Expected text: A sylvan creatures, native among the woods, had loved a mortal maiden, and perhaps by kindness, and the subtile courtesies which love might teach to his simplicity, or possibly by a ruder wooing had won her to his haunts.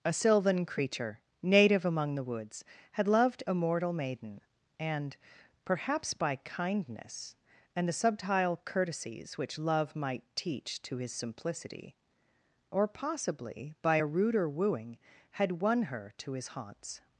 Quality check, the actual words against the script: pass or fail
fail